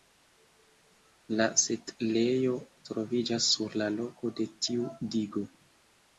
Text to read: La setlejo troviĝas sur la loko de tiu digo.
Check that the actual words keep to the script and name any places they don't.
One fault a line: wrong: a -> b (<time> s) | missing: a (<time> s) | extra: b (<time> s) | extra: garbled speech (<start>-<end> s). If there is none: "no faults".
no faults